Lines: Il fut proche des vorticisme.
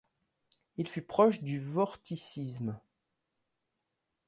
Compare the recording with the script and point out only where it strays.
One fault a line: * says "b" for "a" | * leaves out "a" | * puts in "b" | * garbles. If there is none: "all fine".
* says "du" for "des"